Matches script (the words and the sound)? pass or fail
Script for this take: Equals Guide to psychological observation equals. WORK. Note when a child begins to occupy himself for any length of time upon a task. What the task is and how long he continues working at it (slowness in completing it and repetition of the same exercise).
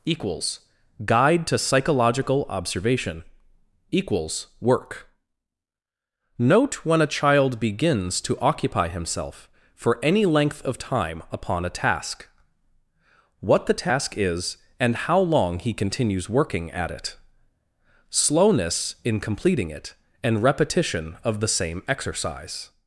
pass